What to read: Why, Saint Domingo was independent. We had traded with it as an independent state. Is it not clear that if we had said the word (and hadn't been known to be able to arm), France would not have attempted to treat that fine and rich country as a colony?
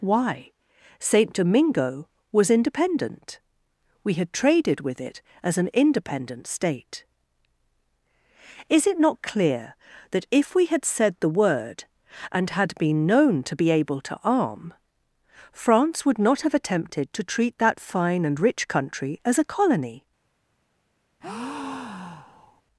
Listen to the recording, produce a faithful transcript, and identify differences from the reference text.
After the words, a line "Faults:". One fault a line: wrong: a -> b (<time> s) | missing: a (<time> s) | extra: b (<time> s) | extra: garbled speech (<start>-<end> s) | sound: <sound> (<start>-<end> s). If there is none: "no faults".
Why, Saint Domingo was independent. We had traded with it as an independent state. Is it not clear that if we had said the word (and had been known to be able to arm), France would not have attempted to treat that fine and rich country as a colony?
Faults:
wrong: hadn't -> had (12.5 s)
sound: breath (21.2-22.6 s)